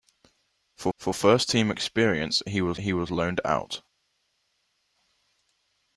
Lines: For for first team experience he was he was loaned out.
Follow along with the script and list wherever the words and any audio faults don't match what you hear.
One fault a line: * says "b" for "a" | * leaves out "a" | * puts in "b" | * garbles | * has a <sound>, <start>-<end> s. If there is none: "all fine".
all fine